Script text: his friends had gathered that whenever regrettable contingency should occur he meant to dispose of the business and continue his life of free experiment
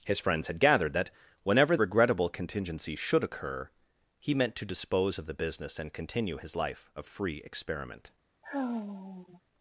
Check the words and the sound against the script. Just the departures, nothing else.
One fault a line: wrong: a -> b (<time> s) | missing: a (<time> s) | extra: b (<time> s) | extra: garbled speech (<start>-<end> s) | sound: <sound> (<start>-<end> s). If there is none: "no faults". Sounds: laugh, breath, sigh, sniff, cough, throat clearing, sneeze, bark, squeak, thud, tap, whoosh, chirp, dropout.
sound: sigh (8.4-9.4 s)